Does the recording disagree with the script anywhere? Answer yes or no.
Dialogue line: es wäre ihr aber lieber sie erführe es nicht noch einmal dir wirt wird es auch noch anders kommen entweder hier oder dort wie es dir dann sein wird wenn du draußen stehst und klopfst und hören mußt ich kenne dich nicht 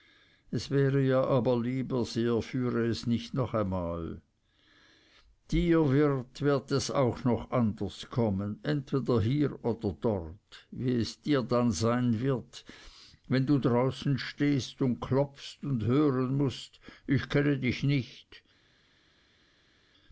no